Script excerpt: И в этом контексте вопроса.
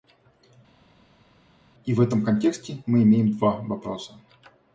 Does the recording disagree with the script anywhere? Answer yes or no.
yes